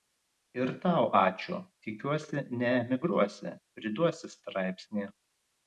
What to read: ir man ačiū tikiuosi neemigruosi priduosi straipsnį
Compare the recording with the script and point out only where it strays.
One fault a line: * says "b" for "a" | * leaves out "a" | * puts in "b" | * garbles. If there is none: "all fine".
* says "tau" for "man"